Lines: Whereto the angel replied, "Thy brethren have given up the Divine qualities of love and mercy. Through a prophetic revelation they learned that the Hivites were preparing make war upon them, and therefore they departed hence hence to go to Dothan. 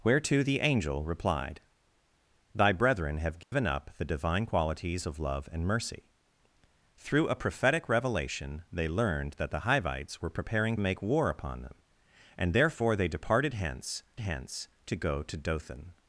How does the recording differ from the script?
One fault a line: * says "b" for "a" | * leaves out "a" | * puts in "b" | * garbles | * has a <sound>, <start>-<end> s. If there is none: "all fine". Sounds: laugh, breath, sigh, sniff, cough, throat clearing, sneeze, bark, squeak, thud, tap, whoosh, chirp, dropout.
* has a dropout, 3.4-3.5 s